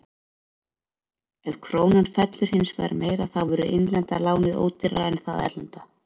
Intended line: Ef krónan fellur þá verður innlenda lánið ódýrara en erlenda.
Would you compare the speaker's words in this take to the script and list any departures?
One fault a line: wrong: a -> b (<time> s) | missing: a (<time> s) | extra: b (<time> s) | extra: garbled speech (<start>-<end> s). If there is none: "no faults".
extra: hins vegar meira (2.5 s)
extra: það (5.3 s)